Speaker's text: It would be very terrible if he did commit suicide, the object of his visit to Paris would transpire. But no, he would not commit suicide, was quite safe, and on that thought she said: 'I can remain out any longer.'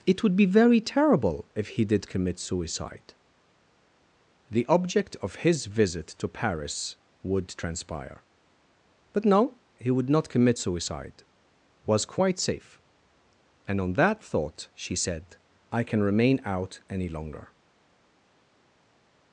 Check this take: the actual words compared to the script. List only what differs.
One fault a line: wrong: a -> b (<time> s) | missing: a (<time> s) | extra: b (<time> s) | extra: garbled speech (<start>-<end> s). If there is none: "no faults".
no faults